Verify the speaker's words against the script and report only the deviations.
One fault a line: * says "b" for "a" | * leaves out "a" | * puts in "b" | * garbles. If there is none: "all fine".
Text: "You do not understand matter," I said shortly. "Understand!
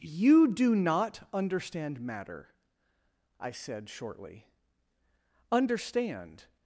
all fine